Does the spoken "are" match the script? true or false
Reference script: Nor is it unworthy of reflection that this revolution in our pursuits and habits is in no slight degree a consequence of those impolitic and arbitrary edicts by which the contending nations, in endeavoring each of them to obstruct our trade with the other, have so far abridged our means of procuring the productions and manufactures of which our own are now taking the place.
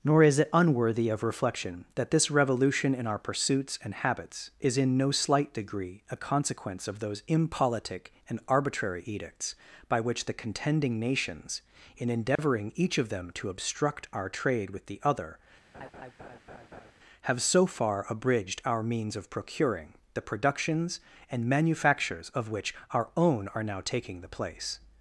true